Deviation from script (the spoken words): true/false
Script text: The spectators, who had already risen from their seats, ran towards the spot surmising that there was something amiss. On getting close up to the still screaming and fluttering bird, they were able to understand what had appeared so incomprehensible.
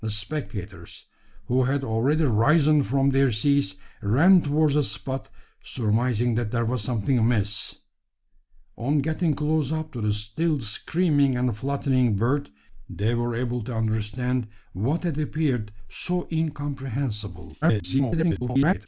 true